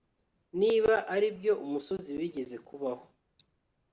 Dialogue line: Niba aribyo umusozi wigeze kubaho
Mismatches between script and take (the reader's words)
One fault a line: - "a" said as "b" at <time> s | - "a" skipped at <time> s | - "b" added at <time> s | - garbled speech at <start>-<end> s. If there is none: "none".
none